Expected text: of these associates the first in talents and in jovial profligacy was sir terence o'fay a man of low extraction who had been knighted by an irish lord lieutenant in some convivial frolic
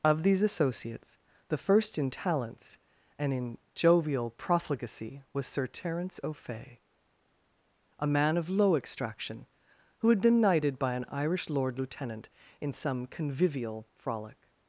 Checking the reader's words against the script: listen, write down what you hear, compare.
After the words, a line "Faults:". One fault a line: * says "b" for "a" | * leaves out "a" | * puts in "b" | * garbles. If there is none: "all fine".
of these associates the first in talents and in jovial profligacy was sir terence o'fay a man of low extraction who had been knighted by an irish lord lieutenant in some convivial frolic
Faults:
all fine